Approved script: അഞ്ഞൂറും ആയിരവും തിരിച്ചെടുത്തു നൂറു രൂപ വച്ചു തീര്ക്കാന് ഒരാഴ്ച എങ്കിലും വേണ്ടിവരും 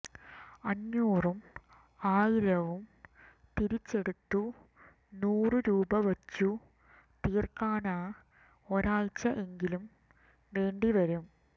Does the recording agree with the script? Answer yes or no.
yes